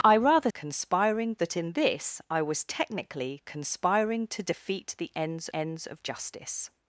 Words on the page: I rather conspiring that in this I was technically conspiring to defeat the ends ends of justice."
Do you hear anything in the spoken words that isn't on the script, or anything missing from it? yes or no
no